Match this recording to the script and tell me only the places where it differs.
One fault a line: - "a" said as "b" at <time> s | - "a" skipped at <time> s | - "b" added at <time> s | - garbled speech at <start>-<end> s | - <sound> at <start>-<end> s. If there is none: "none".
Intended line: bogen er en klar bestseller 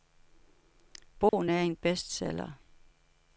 - dropout at 1.3-1.3 s
- "klar" skipped at 1.7 s